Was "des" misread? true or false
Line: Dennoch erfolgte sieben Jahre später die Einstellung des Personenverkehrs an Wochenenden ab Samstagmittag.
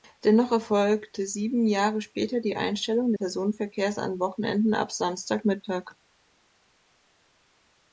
true